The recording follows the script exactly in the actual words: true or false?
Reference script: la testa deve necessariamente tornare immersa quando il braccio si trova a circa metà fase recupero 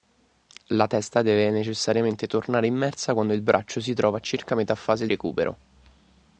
true